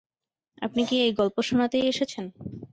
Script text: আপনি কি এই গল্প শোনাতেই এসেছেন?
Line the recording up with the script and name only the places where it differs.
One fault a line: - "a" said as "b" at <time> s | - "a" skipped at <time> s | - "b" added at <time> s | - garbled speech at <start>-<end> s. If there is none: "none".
none